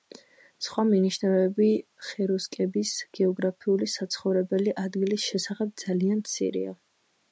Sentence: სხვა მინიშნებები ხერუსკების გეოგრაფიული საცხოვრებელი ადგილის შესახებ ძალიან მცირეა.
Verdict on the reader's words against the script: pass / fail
pass